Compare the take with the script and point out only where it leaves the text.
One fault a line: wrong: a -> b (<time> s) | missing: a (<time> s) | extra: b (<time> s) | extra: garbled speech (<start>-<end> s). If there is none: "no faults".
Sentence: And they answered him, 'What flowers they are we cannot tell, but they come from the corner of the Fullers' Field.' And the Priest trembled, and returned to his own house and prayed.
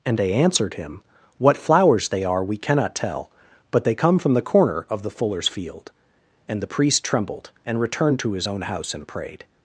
no faults